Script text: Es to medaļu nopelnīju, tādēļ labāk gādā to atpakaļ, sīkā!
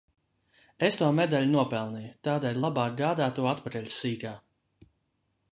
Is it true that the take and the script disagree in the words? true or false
false